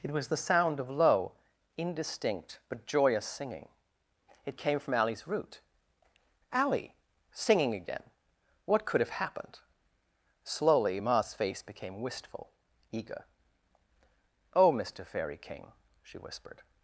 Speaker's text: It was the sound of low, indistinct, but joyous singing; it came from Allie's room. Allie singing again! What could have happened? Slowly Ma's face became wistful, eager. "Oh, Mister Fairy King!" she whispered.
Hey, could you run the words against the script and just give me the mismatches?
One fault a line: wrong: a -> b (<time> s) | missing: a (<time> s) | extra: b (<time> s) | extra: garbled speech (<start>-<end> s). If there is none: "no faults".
wrong: room -> root (5.3 s)